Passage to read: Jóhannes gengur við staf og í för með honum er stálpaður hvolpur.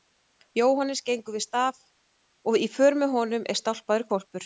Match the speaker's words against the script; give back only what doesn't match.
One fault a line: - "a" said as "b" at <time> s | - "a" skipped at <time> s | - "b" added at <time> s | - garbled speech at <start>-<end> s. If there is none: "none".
none